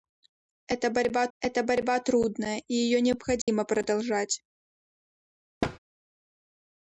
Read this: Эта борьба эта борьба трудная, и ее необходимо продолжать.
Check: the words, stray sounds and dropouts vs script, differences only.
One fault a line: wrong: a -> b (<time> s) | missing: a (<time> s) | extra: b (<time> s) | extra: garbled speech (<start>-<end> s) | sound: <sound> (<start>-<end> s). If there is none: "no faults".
sound: dropout (3.4-3.5 s)
sound: thud (5.6-5.8 s)